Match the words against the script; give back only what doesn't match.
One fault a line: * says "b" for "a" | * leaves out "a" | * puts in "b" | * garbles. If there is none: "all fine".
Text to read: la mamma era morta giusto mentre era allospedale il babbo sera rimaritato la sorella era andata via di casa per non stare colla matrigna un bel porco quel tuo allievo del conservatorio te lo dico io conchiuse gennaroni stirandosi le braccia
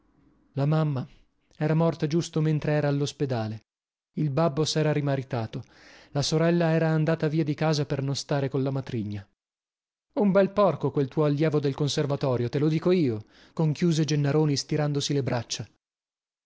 all fine